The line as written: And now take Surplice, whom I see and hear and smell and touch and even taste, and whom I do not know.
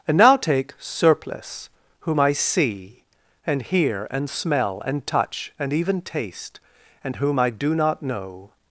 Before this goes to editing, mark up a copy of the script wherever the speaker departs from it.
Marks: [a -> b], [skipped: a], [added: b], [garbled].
And now take Surplice, whom I see and hear and smell and touch and even taste, and whom I do not know.